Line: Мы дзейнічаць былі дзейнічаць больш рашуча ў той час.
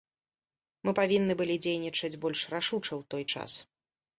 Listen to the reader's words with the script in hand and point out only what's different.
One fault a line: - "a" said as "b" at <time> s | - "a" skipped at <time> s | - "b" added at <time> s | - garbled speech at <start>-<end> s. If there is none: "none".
- "дзейнічаць" said as "павінны" at 1.0 s